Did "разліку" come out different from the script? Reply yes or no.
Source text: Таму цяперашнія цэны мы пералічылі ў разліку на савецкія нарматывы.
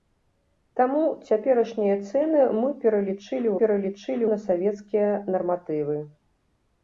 yes